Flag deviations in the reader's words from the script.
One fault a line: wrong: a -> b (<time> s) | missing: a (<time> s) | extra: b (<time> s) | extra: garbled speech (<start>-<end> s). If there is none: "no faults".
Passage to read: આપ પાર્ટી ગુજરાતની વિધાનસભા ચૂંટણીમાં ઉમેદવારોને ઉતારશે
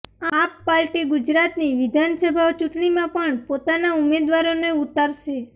extra: પણ પોતાના (3.1 s)